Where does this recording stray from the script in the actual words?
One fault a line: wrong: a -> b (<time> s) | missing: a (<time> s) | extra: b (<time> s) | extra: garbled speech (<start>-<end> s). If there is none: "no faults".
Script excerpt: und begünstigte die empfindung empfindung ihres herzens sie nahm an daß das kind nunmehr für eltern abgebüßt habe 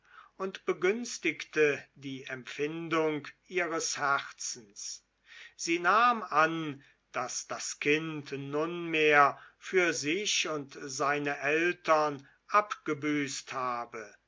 missing: empfindung (3.3 s)
extra: sich und seine (9.9 s)